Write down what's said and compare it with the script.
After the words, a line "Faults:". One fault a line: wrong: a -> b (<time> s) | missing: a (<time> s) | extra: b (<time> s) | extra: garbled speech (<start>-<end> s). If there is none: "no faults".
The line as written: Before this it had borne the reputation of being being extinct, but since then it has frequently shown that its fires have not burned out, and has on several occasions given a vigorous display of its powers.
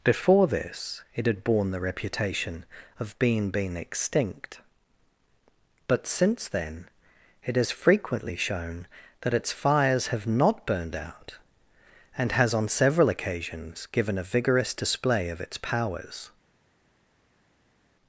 Before this it had borne the reputation of being being extinct, but since then it has frequently shown that its fires have not burned out, and has on several occasions given a vigorous display of its powers.
Faults:
no faults